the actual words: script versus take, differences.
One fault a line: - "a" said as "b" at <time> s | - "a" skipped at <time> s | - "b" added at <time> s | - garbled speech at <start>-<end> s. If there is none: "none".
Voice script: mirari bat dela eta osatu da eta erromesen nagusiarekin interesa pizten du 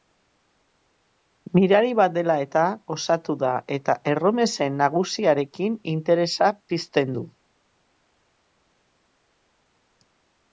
none